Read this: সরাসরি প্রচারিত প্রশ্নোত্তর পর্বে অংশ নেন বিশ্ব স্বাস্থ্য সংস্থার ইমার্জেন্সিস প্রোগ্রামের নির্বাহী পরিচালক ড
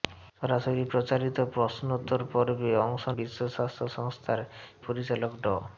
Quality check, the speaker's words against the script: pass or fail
fail